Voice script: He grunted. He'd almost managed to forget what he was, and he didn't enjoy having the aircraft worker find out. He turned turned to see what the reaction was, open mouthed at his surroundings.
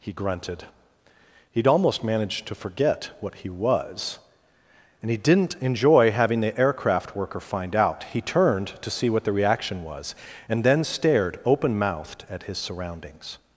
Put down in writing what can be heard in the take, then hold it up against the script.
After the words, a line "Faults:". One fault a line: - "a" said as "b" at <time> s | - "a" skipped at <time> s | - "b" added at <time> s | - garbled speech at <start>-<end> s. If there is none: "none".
He grunted. He'd almost managed to forget what he was, and he didn't enjoy having the aircraft worker find out. He turned to see what the reaction was, and then stared open mouthed at his surroundings.
Faults:
- "turned" skipped at 8.8 s
- "and then stared" added at 10.5 s